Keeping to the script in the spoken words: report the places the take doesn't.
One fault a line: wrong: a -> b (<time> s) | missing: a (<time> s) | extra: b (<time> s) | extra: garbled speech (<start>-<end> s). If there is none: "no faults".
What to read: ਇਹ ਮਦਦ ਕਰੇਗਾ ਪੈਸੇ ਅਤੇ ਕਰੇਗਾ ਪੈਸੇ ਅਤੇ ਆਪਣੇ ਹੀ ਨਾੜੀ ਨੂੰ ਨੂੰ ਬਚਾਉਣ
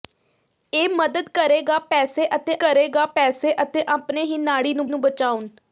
no faults